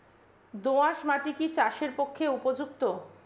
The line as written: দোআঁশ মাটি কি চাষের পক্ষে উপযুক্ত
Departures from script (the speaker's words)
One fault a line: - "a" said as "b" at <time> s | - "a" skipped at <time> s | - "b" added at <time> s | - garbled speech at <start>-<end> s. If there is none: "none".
none